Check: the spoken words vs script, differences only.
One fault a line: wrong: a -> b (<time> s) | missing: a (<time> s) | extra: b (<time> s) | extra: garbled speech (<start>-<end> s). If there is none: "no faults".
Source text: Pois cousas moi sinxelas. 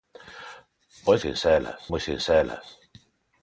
wrong: cousas -> sinxelas (1.2 s)